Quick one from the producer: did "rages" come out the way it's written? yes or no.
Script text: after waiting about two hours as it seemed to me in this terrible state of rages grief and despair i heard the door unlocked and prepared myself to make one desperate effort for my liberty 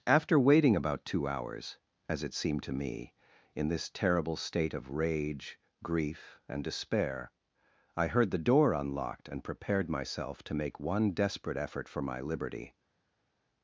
no